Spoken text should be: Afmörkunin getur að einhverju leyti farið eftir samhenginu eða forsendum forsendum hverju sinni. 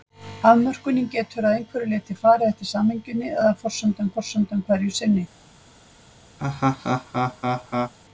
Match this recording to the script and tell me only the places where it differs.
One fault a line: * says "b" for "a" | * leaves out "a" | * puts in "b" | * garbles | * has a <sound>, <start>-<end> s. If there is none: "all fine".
* has a laugh, 6.4-7.9 s